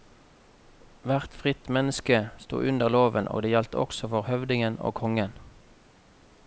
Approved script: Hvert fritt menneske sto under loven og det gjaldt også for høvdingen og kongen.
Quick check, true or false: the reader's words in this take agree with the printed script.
true